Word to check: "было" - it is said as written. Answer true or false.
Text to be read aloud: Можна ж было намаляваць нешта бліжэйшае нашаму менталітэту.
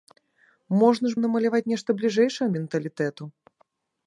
false